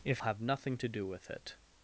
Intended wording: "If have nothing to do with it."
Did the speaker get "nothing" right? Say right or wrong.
right